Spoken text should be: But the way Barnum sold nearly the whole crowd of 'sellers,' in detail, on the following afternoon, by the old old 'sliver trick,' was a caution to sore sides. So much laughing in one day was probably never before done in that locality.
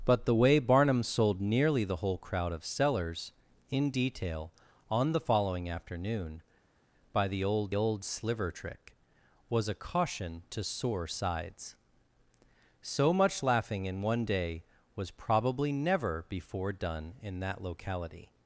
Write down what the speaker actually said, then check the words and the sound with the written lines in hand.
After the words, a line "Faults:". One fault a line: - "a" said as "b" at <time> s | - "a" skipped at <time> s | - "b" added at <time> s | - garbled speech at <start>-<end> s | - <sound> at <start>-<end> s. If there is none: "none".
But the way Barnum sold nearly the whole crowd of 'sellers,' in detail, on the following afternoon, by the old old 'sliver trick,' was a caution to sore sides. So much laughing in one day was probably never before done in that locality.
Faults:
none